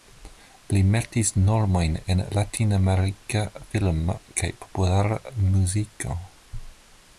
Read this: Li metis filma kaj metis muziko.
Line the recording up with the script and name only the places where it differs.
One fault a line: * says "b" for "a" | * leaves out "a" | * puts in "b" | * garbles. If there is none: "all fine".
* puts in "normojn en latinamerika"
* says "populara" for "metis"